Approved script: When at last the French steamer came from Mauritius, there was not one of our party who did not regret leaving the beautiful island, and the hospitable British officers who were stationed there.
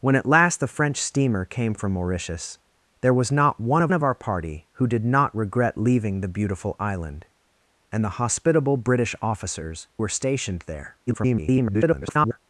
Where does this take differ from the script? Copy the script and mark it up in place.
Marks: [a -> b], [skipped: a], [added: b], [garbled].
When at last the French steamer came from Mauritius, there was not one of [added: of] our party who did not regret leaving the beautiful island, and the hospitable British officers [skipped: who] were stationed there. [garbled]